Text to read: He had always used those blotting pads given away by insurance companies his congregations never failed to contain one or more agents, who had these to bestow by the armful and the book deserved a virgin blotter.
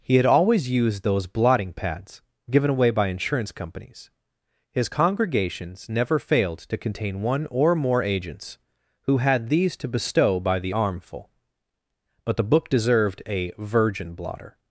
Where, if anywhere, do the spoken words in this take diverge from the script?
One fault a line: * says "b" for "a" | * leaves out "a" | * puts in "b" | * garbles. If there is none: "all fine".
* says "but" for "and"